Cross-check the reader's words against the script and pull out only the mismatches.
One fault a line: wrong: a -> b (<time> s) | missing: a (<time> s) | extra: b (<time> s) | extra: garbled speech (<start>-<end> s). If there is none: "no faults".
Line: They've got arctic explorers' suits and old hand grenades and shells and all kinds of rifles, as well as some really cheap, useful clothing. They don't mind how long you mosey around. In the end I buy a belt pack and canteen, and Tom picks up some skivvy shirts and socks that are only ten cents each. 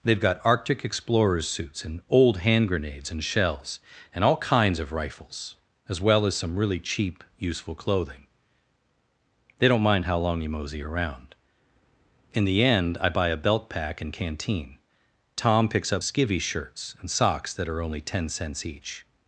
missing: and (14.8 s)
missing: some (16.0 s)